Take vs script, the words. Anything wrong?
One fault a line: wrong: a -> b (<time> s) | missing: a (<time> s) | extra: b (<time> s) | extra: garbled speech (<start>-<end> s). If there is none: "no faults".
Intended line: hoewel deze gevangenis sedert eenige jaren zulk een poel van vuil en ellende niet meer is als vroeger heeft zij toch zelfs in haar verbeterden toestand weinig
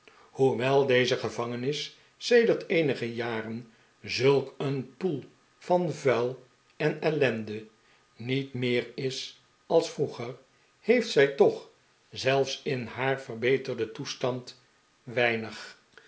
no faults